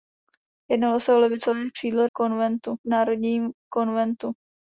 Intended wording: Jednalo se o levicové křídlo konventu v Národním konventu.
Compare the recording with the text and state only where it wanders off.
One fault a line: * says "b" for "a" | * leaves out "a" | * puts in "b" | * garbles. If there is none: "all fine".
all fine